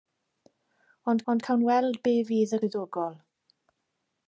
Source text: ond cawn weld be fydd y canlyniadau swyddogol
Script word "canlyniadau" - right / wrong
wrong